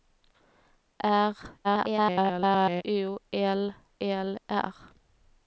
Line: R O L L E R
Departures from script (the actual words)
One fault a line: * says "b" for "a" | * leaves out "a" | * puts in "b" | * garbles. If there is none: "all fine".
* garbles
* leaves out "E"